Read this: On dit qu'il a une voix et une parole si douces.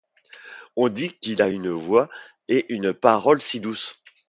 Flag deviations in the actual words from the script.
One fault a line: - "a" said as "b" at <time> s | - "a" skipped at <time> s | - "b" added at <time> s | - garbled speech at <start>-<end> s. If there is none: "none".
none